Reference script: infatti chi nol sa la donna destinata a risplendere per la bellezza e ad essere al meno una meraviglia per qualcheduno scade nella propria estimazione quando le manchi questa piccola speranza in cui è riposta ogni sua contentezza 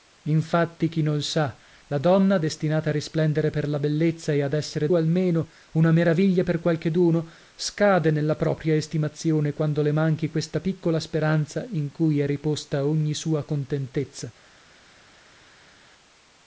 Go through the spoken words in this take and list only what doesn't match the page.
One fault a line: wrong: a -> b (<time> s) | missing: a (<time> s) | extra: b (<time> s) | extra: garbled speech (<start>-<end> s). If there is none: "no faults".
no faults